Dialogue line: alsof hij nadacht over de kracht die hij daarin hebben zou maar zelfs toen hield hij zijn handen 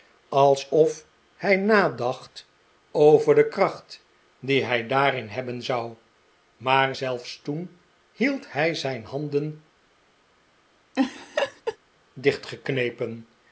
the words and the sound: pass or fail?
fail